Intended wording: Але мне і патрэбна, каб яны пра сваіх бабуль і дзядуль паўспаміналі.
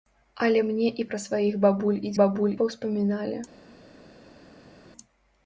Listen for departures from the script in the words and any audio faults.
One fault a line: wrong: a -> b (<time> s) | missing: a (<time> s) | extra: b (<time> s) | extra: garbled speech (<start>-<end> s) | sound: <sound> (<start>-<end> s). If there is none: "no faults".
missing: патрэбна каб яны (1.0 s)
wrong: дзядуль -> бабуль (2.2 s)